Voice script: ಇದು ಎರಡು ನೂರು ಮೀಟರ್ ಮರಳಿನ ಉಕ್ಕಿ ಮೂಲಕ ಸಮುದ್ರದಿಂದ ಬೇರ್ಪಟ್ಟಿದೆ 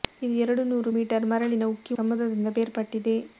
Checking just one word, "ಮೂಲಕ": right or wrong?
wrong